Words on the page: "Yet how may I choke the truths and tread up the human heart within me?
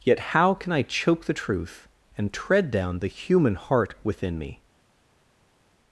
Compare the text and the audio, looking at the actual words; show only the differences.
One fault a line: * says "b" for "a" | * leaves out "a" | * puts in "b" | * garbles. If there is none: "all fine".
* says "can" for "may"
* says "truth" for "truths"
* says "down" for "up"